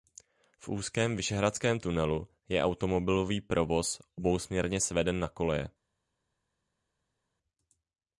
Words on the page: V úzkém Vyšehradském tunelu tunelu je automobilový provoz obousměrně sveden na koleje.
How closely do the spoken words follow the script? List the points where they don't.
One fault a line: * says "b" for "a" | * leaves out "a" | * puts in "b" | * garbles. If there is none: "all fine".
* leaves out "tunelu"